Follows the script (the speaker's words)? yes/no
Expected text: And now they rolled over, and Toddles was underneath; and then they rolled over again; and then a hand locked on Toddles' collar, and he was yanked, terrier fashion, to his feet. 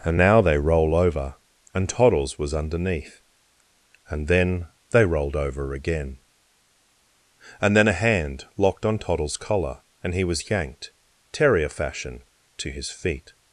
no